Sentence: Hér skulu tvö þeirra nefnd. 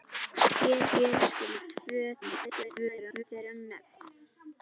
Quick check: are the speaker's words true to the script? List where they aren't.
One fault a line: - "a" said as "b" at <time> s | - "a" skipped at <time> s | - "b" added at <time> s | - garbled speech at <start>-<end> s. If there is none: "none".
- "hér" added at 0.9 s
- garbled speech at 2.2-3.2 s